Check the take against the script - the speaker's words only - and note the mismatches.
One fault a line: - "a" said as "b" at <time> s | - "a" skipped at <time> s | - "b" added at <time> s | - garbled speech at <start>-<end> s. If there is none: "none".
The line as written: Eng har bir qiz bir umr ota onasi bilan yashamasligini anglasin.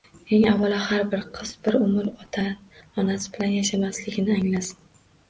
- "avvalo" added at 0.5 s